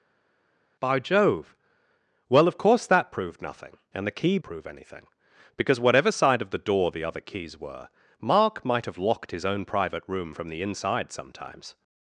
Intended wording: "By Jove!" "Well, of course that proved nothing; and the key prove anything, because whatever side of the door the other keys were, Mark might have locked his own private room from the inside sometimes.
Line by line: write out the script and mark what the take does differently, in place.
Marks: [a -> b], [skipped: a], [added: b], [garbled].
"By Jove!" "Well, of course that proved nothing; and the key prove anything, because whatever side of the door the other keys were, Mark might have locked his own private room from the inside sometimes.